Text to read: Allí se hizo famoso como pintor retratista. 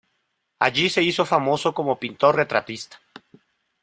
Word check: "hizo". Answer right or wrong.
right